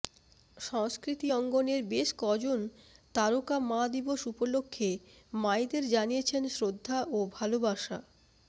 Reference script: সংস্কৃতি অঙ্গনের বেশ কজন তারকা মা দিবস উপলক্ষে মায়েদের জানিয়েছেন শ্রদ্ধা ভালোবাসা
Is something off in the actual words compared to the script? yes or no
yes